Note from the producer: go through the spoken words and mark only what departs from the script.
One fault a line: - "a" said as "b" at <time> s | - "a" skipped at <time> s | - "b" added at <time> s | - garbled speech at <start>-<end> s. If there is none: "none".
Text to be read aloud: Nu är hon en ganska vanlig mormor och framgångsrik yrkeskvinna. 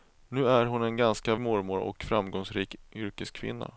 - "vanlig" skipped at 1.4 s